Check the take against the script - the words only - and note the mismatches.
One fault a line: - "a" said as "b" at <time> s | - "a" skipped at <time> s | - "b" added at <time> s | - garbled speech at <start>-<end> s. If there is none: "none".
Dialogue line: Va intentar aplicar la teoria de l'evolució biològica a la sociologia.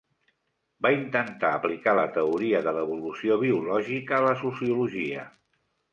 none